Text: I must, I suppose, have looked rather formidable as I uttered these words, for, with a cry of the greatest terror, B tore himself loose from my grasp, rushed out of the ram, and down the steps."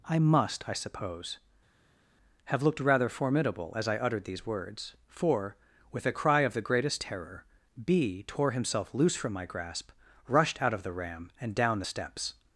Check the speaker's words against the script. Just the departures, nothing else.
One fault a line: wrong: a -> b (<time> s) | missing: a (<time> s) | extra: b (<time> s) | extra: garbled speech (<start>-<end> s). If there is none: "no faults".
no faults